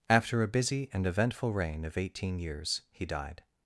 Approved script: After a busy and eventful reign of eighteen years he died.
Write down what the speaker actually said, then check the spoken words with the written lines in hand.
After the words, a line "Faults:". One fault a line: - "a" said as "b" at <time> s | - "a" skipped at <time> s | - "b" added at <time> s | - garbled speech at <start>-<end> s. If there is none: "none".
After a busy and eventful reign of eighteen years he died.
Faults:
none